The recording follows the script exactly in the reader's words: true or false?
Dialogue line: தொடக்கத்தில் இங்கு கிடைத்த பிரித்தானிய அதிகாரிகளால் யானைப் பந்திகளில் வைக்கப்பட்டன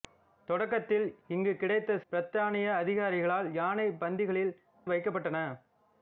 true